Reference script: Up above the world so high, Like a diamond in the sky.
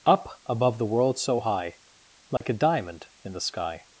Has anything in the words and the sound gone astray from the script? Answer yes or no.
yes